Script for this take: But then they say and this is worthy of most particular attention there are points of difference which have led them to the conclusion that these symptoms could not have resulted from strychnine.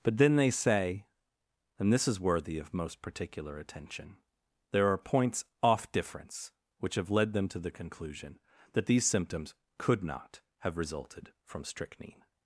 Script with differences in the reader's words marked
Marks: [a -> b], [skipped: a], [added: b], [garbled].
But then they say and this is worthy of most particular attention there are points [of -> off] difference which have led them to the conclusion that these symptoms could not have resulted from strychnine.